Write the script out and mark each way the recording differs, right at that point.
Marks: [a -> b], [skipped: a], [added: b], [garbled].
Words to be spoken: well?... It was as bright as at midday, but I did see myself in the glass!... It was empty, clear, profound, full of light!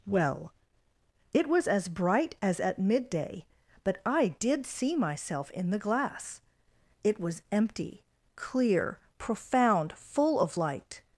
well?... It was as bright as at midday, but I did see myself in the glass!... It was empty, clear, profound, full of light!